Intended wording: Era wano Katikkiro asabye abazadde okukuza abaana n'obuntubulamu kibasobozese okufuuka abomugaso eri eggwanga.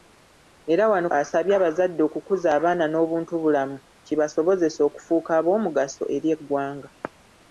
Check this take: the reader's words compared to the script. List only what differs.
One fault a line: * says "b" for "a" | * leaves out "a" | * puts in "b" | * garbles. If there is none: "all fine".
* leaves out "Katikkiro"